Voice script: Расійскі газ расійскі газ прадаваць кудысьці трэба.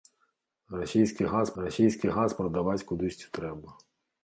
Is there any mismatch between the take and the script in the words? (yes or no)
no